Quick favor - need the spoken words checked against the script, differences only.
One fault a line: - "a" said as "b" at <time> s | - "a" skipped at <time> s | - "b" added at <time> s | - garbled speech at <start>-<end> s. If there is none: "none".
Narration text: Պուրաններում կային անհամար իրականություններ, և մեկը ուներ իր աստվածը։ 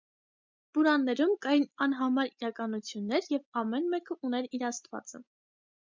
- "ամեն" added at 3.6 s